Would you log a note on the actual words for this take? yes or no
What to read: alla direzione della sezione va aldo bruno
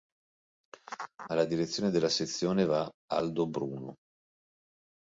no